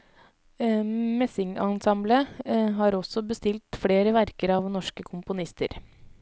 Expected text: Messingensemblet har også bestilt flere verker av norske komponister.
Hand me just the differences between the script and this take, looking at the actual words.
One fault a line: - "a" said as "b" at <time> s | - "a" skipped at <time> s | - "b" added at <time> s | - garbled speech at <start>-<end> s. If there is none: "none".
none